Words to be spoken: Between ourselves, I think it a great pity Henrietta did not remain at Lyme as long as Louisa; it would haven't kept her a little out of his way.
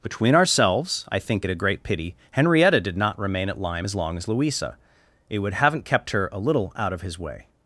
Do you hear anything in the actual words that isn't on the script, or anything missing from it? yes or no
no